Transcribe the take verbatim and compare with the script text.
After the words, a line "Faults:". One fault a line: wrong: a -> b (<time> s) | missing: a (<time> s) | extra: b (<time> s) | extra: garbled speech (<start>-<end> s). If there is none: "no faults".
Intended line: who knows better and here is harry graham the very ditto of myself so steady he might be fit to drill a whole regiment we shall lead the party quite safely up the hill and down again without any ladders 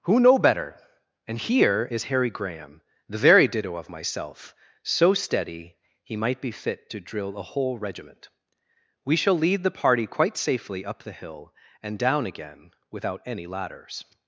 who know better and here is harry graham the very ditto of myself so steady he might be fit to drill a whole regiment we shall lead the party quite safely up the hill and down again without any ladders
Faults:
wrong: knows -> know (0.2 s)